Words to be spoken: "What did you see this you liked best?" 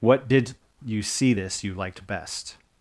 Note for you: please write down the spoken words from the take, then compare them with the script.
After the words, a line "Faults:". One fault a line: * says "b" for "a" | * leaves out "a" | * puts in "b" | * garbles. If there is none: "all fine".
"What did you see this you liked best?"
Faults:
all fine